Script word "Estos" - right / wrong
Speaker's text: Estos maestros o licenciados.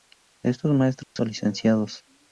right